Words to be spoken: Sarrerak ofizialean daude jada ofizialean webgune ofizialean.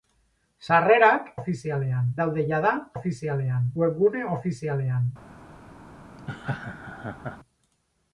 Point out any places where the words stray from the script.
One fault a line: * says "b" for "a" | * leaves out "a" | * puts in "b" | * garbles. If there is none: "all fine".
all fine